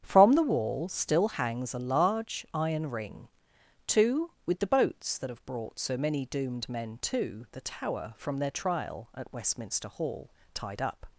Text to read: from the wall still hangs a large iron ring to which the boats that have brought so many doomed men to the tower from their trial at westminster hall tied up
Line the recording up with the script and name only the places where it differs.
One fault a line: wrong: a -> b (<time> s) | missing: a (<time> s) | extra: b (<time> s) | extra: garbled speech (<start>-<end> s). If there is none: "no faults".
wrong: which -> with (4.5 s)